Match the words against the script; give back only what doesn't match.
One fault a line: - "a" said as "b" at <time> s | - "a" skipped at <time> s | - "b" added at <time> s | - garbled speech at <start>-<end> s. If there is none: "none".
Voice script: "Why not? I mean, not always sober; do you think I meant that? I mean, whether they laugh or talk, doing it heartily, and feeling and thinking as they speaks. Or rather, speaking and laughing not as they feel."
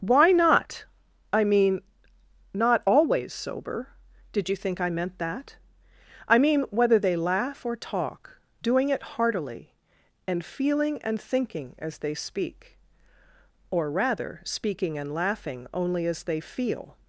- "do" said as "did" at 4.3 s
- "speaks" said as "speak" at 12.1 s
- "not" said as "only" at 15.7 s